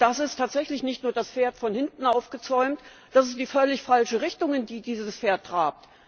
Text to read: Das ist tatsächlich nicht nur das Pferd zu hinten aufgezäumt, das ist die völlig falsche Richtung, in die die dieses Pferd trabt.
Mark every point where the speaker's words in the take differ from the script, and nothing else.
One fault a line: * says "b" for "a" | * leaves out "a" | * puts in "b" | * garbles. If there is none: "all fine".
* says "von" for "zu"
* leaves out "die"